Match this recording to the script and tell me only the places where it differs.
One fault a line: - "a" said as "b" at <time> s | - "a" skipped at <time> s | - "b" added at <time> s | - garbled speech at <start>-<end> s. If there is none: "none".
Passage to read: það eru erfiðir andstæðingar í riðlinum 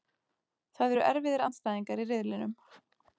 none